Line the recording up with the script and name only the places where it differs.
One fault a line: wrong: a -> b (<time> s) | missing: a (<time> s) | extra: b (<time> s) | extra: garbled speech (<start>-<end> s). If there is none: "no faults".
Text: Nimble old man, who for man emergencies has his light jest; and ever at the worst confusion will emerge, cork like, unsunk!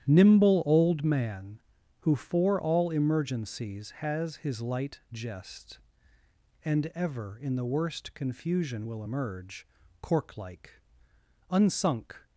wrong: man -> all (2.6 s)
wrong: at -> in (7.4 s)